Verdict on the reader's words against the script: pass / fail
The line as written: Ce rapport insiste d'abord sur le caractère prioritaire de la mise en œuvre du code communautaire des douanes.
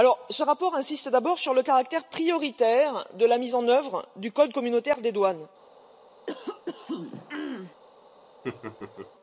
pass